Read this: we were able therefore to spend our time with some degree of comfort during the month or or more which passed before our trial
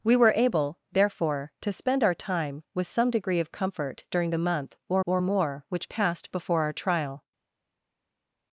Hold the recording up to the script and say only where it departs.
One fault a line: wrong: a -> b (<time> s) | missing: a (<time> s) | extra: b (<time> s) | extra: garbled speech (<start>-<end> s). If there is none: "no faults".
no faults